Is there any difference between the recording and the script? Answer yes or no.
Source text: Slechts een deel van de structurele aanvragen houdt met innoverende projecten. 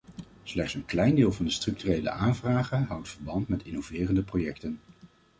yes